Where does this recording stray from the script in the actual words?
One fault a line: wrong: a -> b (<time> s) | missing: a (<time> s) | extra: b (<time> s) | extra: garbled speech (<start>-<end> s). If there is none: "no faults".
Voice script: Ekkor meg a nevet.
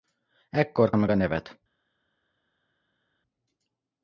no faults